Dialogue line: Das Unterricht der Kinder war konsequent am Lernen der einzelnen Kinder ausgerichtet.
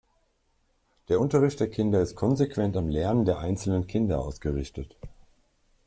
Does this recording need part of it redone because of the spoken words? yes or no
yes